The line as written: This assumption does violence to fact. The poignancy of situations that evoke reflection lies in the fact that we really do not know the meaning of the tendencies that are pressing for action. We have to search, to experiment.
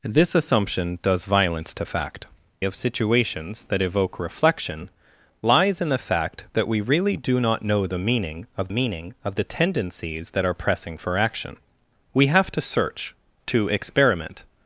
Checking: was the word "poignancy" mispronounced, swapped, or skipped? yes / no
yes